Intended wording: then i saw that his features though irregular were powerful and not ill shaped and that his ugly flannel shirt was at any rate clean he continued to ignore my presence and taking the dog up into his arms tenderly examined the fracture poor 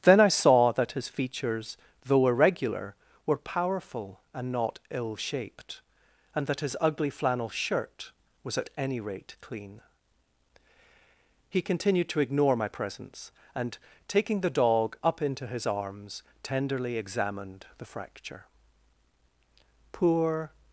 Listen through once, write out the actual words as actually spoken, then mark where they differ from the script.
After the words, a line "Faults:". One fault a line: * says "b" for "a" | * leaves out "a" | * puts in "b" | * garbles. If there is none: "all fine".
then i saw that his features though irregular were powerful and not ill shaped and that his ugly flannel shirt was at any rate clean he continued to ignore my presence and taking the dog up into his arms tenderly examined the fracture poor
Faults:
all fine